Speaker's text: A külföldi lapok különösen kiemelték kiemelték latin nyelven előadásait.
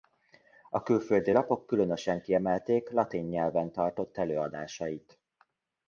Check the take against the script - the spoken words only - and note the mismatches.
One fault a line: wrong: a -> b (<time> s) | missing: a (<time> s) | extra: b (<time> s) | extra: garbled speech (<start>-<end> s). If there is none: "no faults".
missing: kiemelték (2.9 s)
extra: tartott (3.7 s)